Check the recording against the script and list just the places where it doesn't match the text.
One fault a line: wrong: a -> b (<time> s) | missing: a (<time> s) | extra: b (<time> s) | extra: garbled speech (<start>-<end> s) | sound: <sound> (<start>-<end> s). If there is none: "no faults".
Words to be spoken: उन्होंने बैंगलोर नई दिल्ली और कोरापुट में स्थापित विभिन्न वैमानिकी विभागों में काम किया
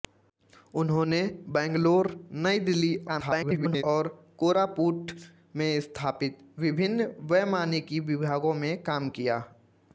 extra: garbled speech (3.1-3.8 s)